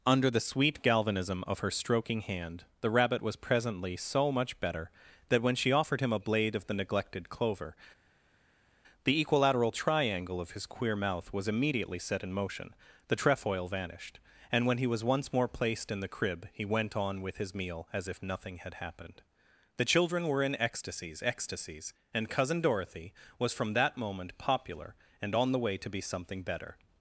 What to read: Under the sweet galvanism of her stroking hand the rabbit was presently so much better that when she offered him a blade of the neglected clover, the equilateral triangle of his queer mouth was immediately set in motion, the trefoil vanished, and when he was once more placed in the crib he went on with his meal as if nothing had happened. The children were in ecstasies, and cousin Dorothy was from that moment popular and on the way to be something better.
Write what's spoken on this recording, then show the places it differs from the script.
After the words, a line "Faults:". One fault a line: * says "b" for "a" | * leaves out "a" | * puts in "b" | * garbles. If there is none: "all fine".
Under the sweet galvanism of her stroking hand the rabbit was presently so much better that when she offered him a blade of the neglected clover, the equilateral triangle of his queer mouth was immediately set in motion, the trefoil vanished, and when he was once more placed in the crib he went on with his meal as if nothing had happened. The children were in ecstasies ecstasies, and cousin Dorothy was from that moment popular and on the way to be something better.
Faults:
* puts in "ecstasies"